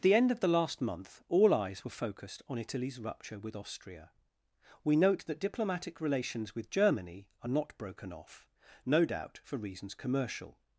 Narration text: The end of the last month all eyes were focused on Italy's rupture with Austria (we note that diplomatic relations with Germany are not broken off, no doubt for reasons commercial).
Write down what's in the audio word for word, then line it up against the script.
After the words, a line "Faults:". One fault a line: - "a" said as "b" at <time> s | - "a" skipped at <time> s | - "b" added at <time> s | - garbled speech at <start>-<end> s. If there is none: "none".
at The end of the last month all eyes were focused on Italy's rupture with Austria (we note that diplomatic relations with Germany are not broken off, no doubt for reasons commercial).
Faults:
- "at" added at 0.0 s